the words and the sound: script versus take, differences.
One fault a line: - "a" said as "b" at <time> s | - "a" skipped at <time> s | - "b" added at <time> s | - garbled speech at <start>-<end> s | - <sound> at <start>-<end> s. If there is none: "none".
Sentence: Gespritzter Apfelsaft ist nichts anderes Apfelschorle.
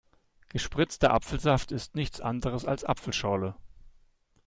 - "als" added at 2.6 s